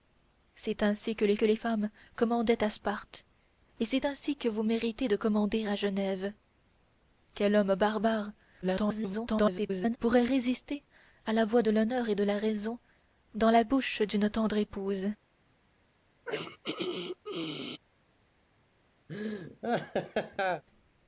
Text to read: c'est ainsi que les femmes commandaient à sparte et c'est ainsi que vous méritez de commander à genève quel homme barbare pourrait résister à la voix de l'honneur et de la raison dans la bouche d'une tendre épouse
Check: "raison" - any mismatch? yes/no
no